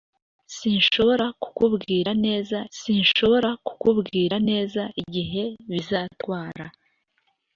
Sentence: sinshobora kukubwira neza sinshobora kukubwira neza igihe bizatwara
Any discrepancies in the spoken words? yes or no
no